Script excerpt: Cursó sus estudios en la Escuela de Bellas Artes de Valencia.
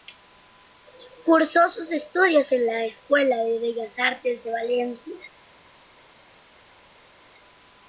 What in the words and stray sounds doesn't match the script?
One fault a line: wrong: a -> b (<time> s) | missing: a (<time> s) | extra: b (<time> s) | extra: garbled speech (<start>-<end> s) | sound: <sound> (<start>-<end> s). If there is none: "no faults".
no faults